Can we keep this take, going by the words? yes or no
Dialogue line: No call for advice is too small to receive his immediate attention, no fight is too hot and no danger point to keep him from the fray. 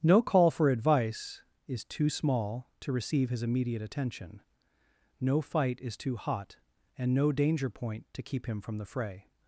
yes